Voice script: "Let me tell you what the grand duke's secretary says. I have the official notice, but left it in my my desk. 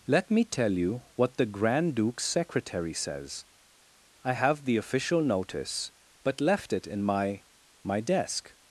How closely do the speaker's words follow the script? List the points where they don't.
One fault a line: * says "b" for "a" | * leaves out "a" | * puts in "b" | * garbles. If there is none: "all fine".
all fine